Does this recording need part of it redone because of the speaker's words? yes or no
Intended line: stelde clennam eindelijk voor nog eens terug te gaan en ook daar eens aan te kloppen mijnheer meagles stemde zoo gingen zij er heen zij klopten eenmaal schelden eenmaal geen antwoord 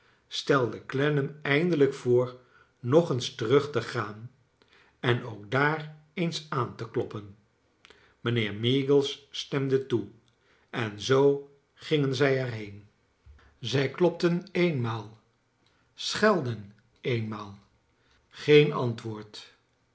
yes